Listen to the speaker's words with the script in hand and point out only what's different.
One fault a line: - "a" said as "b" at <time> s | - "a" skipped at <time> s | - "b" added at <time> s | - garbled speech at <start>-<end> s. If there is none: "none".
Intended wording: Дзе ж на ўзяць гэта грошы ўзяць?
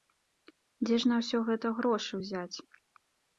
- "ўзяць" said as "ўсё" at 1.2 s